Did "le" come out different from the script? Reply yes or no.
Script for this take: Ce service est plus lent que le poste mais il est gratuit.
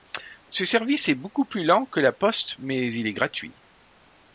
yes